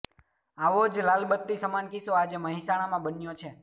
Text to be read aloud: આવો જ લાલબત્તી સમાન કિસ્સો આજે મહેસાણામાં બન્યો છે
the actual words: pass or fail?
pass